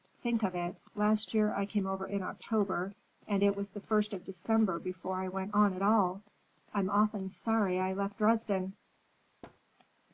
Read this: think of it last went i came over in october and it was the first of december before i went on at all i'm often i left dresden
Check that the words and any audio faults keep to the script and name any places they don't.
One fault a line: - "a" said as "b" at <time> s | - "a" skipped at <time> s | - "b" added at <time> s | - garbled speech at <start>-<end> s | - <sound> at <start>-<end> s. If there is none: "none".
- "went" said as "year" at 1.4 s
- "sorry" added at 7.3 s
- thud at 9.4-9.6 s